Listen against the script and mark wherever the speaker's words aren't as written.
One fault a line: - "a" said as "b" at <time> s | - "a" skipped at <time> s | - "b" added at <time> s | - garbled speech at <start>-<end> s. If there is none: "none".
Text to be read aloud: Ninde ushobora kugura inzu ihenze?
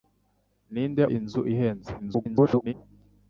- "ushobora kugura" skipped at 1.0 s
- garbled speech at 2.0-2.7 s